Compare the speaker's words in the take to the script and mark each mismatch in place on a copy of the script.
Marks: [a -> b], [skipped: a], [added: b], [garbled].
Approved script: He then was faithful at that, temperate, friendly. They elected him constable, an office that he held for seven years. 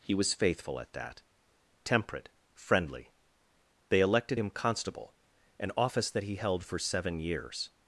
He [skipped: then] was faithful at that, temperate, friendly. They elected him constable, an office that he held for seven years.